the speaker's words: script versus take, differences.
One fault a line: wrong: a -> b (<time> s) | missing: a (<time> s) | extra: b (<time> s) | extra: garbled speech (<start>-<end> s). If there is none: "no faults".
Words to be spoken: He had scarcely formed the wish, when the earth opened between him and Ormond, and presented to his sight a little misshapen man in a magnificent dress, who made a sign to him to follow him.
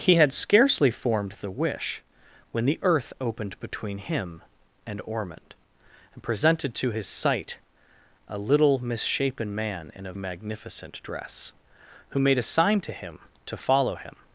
no faults